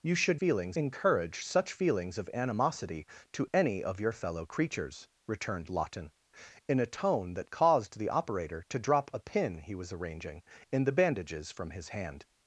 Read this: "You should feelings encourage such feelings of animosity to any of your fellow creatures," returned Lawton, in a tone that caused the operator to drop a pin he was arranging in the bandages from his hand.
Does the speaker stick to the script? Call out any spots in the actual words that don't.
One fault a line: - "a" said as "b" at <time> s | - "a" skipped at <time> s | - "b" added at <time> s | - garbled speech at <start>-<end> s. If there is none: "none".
none